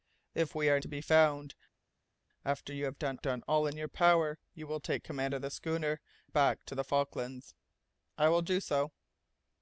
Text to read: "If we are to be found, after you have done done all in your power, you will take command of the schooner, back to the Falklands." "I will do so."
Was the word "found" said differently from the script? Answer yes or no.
no